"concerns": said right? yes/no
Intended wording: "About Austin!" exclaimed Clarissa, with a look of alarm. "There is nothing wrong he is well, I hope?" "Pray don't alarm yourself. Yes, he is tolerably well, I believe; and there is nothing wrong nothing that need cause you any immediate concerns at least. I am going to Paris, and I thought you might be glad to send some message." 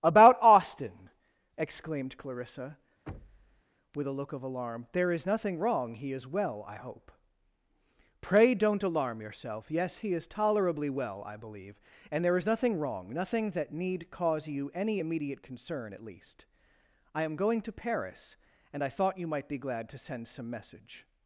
no